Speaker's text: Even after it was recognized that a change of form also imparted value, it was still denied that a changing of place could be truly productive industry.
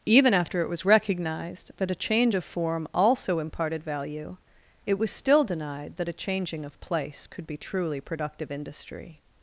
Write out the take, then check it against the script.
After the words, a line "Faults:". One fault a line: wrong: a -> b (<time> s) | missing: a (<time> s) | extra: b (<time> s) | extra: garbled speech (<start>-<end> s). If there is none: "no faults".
Even after it was recognized that a change of form also imparted value, it was still denied that a changing of place could be truly productive industry.
Faults:
no faults